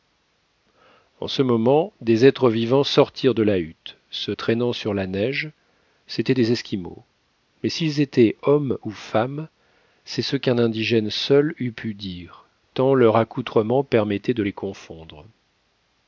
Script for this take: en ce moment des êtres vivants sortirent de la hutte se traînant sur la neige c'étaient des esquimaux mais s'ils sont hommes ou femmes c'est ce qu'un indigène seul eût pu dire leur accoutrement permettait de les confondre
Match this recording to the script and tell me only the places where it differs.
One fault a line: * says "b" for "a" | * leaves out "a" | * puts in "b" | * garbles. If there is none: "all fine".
* says "étaient" for "sont"
* puts in "tant"